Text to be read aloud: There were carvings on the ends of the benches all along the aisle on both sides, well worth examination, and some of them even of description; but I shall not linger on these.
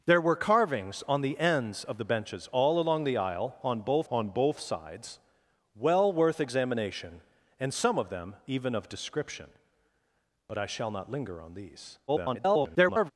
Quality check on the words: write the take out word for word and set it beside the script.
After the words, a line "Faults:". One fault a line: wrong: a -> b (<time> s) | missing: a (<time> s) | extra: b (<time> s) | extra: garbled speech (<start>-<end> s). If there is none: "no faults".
There were carvings on the ends of the benches all along the aisle on both on both sides, well worth examination, and some of them even of description; but I shall not linger on these. [garbled]
Faults:
extra: on both (4.1 s)
extra: garbled speech (12.1-13.1 s)